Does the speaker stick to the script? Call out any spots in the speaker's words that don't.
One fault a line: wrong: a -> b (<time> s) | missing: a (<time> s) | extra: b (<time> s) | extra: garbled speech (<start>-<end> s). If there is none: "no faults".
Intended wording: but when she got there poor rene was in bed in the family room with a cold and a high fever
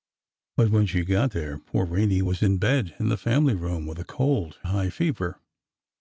missing: and (4.6 s)